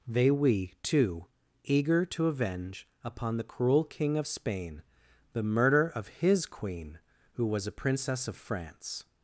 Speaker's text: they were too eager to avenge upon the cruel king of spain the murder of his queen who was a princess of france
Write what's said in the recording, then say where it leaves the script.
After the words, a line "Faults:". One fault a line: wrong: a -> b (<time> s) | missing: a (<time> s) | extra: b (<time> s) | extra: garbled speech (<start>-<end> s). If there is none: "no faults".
they we too eager to avenge upon the cruel king of spain the murder of his queen who was a princess of france
Faults:
wrong: were -> we (0.3 s)